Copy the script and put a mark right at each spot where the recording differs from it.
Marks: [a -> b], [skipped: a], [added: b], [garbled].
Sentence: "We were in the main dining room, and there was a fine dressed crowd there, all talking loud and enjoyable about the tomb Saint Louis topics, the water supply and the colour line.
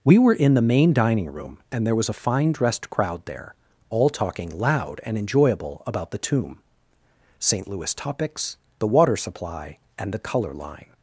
"We were in the main dining room, and there was a fine dressed crowd there, all talking loud and enjoyable about the tomb Saint Louis topics, the water supply and the colour line.